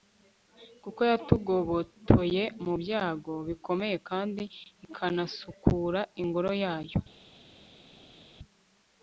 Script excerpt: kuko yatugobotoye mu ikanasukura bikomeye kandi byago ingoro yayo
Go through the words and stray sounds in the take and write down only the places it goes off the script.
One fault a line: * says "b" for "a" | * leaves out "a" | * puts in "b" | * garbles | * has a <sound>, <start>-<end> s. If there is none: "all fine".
* says "byago" for "ikanasukura"
* says "ikanasukura" for "byago"